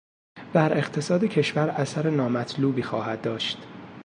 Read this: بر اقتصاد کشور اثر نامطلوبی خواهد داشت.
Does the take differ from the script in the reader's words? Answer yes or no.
no